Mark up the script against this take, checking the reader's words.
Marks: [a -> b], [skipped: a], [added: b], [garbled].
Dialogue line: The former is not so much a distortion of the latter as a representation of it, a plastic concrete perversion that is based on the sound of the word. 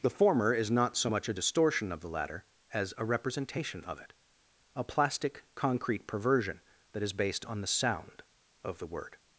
The former is not so much a distortion of the latter as a representation of it, a plastic concrete perversion that is based on the sound of the word.